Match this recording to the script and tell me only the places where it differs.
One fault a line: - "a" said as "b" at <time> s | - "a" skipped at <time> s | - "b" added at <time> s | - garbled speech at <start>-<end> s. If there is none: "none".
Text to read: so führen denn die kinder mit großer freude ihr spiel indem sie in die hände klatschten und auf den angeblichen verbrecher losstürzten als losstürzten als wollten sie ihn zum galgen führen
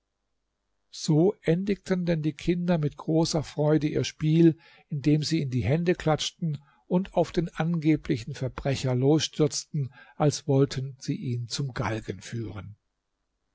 - "führen" said as "endigten" at 1.4 s
- "losstürzten als" skipped at 10.5 s